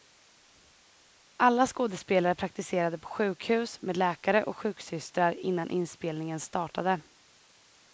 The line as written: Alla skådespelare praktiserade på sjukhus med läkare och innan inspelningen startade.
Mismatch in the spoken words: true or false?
true